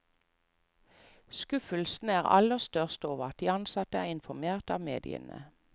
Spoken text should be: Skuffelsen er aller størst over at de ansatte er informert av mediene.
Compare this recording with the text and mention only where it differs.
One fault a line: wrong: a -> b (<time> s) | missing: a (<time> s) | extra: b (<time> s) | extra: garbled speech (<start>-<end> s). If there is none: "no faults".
no faults